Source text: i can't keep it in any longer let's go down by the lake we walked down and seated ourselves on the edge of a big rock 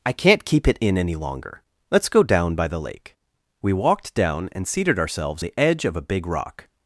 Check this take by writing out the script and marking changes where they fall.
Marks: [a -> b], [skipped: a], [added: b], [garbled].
i can't keep it in any longer let's go down by the lake we walked down and seated ourselves [skipped: on] the edge of a big rock